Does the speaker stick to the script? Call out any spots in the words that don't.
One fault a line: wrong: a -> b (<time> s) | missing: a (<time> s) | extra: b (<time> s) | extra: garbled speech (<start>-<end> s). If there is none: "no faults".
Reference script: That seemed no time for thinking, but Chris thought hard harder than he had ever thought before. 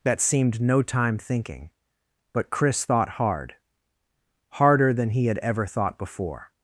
missing: for (1.2 s)